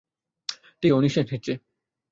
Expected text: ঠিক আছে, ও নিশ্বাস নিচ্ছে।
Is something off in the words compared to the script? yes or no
yes